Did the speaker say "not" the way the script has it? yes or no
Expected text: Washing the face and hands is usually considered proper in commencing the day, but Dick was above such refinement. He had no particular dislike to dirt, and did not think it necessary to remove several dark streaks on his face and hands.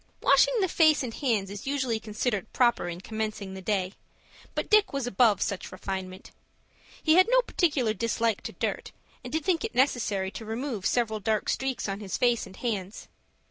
no